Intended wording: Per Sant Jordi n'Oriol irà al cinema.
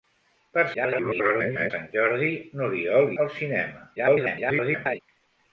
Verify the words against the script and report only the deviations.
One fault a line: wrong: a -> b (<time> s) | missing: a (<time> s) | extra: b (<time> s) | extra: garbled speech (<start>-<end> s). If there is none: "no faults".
extra: garbled speech (0.7-1.7 s)
missing: irà (3.1 s)
extra: garbled speech (4.0-5.0 s)